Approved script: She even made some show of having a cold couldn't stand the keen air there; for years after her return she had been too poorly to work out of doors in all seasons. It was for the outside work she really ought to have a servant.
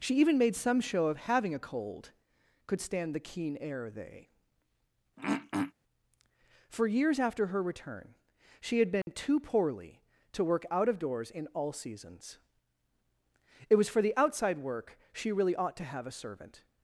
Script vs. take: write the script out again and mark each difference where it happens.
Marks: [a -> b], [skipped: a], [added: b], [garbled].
She even made some show of having a cold [couldn't -> could] stand the keen air [there; -> they] for years after her return she had been too poorly to work out of doors in all seasons. It was for the outside work she really ought to have a servant.